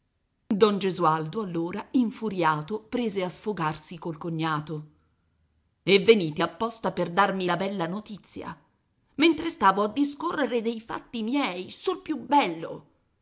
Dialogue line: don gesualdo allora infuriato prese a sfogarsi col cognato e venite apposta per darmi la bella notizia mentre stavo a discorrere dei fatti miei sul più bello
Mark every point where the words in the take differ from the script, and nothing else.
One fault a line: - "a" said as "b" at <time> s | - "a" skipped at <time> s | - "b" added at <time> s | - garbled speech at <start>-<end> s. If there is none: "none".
none